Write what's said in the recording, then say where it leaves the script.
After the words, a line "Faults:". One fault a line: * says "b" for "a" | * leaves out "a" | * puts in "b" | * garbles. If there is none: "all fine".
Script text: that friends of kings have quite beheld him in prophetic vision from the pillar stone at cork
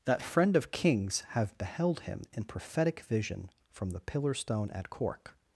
that friend of kings have beheld him in prophetic vision from the pillar stone at cork
Faults:
* says "friend" for "friends"
* leaves out "quite"